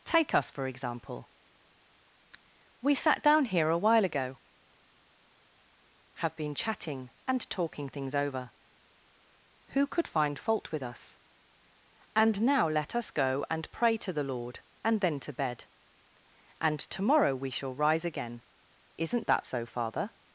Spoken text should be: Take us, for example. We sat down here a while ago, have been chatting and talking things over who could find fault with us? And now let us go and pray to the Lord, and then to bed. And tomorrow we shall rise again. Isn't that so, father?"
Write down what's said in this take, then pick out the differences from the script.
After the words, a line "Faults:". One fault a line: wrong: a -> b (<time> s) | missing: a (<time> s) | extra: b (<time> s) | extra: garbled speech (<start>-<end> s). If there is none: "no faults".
Take us, for example. We sat down here a while ago, have been chatting and talking things over who could find fault with us? And now let us go and pray to the Lord, and then to bed. And tomorrow we shall rise again. Isn't that so, father?"
Faults:
no faults